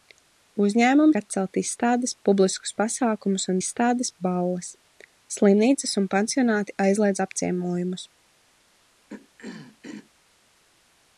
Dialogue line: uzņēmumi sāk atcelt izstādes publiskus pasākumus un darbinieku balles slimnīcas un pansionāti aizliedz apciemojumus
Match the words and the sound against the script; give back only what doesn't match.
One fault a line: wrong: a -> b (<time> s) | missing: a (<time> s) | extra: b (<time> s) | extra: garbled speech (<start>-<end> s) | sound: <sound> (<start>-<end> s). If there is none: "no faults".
missing: sāk (1.2 s)
wrong: darbinieku -> izstādes (3.6 s)
sound: throat clearing (9.1-10.1 s)